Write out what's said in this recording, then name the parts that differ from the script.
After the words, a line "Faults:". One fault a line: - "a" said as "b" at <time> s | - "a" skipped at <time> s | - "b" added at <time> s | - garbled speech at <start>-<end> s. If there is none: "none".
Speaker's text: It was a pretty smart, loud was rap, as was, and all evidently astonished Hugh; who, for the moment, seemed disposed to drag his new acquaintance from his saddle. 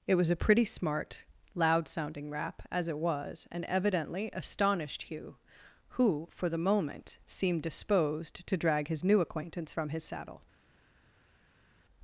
It was a pretty smart, loud sounding rap, as it was, and evidently astonished Hugh; who, for the moment, seemed disposed to drag his new acquaintance from his saddle.
Faults:
- "was" said as "sounding" at 1.9 s
- "it" added at 2.9 s
- "all" skipped at 3.6 s